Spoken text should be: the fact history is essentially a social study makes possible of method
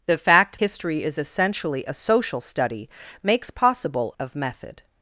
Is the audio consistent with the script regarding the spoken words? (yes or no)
yes